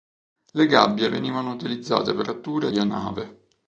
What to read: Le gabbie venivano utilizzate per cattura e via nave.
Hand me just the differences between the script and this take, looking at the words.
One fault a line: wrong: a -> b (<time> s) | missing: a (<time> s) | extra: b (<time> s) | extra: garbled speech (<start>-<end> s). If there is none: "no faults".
no faults